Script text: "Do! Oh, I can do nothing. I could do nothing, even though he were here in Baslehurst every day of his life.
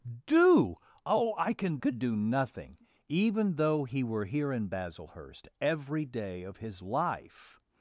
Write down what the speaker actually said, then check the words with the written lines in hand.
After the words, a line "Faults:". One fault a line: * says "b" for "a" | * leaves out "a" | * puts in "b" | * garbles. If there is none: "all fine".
"Do! Oh, I can could do nothing, even though he were here in Baslehurst every day of his life.
Faults:
* leaves out "do nothing I"